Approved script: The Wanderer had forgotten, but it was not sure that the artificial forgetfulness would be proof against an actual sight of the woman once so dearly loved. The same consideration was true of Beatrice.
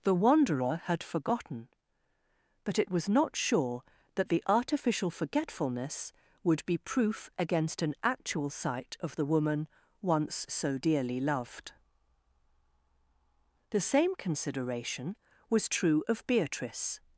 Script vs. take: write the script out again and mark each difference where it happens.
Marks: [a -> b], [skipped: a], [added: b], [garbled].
The Wanderer had forgotten, but it was not sure that the artificial forgetfulness would be proof against an actual sight of the woman once so dearly loved. The same consideration was true of Beatrice.